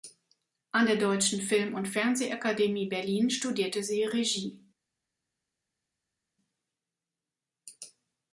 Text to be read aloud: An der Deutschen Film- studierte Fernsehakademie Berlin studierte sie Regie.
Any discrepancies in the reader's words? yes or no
yes